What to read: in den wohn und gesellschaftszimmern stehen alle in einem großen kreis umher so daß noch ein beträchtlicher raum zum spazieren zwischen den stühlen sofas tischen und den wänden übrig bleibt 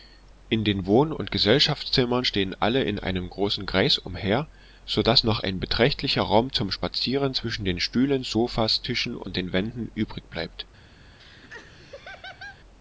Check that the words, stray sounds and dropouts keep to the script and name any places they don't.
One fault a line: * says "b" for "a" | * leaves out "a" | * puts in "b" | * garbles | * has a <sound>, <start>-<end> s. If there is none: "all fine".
* has a laugh, 11.2-12.6 s